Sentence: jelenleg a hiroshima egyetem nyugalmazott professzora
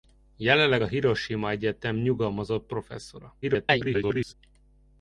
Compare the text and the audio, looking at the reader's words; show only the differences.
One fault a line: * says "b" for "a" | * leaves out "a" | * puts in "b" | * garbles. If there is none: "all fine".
* garbles